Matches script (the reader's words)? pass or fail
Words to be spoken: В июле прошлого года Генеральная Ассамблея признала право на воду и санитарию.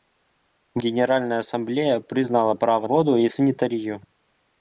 fail